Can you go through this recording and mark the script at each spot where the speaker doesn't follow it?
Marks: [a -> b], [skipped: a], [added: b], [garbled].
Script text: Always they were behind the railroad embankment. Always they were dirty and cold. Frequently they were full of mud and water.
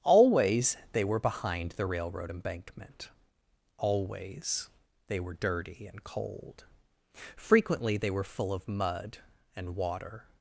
Always they were behind the railroad embankment. Always they were dirty and cold. Frequently they were full of mud and water.